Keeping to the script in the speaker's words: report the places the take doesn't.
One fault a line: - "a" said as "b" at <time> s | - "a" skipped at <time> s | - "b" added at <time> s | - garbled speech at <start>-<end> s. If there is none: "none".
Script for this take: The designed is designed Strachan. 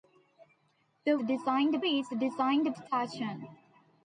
none